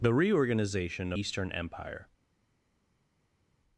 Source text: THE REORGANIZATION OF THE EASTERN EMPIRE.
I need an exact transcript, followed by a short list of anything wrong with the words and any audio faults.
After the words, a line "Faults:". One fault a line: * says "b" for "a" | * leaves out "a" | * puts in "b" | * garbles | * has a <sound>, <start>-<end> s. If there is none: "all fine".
THE REORGANIZATION EASTERN EMPIRE.
Faults:
* leaves out "OF THE"